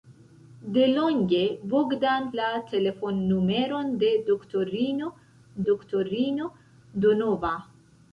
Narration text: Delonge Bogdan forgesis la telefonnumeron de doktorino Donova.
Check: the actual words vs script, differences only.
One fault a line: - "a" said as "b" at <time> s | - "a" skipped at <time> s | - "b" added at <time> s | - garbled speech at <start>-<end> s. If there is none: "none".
- "forgesis" skipped at 2.2 s
- "doktorino" added at 5.7 s